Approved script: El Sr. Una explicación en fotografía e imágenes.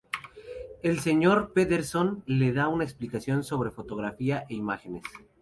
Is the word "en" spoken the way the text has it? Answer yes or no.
no